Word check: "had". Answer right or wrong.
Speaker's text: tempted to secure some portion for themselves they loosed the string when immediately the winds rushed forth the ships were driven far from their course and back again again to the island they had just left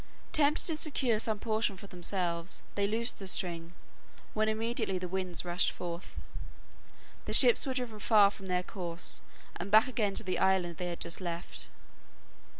right